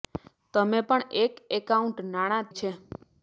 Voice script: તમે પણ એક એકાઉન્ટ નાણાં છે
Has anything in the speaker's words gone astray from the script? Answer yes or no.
no